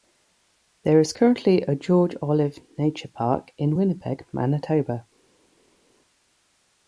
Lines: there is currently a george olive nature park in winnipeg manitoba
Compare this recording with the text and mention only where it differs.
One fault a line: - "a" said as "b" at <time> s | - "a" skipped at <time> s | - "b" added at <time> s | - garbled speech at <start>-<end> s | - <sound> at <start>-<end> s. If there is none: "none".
none